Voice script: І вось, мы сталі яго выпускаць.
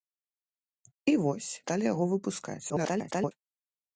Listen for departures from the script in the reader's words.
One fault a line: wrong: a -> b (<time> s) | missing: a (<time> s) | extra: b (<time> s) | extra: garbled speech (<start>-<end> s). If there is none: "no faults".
missing: мы (1.5 s)
extra: garbled speech (2.7-3.3 s)